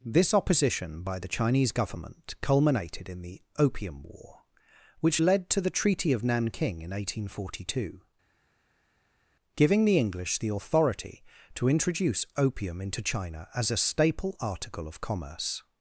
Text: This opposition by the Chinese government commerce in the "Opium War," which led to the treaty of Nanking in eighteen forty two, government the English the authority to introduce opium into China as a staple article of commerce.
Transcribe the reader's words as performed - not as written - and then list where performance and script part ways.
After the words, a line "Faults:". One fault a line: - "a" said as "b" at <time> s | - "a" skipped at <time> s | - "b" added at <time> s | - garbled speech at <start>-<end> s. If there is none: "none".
This opposition by the Chinese government culminated in the "Opium War," which led to the treaty of Nanking in eighteen forty two, giving the English the authority to introduce opium into China as a staple article of commerce.
Faults:
- "commerce" said as "culminated" at 2.4 s
- "government" said as "giving" at 9.5 s